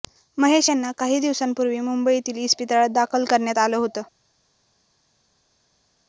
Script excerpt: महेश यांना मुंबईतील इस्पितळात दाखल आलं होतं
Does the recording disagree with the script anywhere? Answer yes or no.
yes